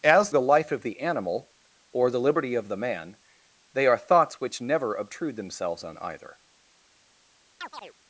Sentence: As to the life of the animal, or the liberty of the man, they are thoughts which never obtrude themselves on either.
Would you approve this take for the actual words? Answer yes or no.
no